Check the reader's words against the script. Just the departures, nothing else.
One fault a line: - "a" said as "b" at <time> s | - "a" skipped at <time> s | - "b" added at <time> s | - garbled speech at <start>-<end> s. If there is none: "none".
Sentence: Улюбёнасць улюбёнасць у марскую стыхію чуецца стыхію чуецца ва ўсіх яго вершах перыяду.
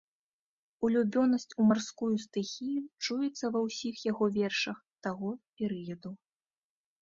- "улюбёнасць" skipped at 1.5 s
- "стыхію чуецца" skipped at 3.5 s
- "таго" added at 5.1 s